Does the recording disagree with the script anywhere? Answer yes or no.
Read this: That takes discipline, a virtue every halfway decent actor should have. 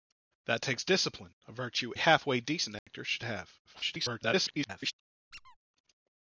yes